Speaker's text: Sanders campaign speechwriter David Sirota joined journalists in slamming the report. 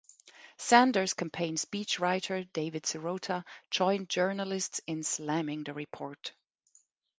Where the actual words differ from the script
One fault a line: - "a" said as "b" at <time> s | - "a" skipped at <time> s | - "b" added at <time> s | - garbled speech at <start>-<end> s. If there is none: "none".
none